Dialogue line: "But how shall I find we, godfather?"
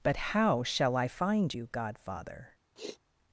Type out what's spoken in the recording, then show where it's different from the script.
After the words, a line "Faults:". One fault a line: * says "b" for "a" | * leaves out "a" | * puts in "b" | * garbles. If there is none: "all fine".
"But how shall I find you, godfather?"
Faults:
* says "you" for "we"